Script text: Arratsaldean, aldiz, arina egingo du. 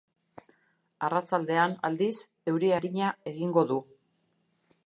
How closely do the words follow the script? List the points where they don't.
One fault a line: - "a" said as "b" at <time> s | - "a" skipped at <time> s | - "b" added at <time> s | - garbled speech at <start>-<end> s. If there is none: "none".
- "euri" added at 2.5 s